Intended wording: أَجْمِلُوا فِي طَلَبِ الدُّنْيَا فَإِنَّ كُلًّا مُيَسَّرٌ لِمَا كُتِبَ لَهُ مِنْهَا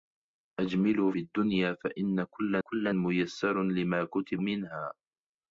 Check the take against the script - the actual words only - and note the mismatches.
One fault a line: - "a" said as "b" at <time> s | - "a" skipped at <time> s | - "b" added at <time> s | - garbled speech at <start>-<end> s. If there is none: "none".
- "فِي طَلَبِ" skipped at 1.1 s
- "كُلًّا" added at 2.6 s
- "لَهُ" skipped at 4.4 s